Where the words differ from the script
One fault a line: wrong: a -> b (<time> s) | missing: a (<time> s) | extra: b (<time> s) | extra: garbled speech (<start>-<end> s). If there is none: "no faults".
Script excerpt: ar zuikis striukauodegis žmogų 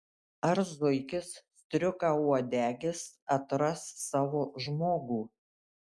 extra: atras savo (3.4 s)